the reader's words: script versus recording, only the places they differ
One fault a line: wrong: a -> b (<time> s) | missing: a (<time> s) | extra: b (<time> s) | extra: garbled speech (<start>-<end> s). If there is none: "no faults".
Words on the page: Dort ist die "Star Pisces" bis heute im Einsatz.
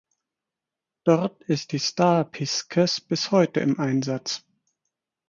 no faults